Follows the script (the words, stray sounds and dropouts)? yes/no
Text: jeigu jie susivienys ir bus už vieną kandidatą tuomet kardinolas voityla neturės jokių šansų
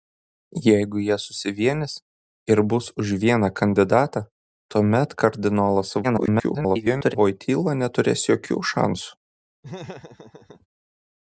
no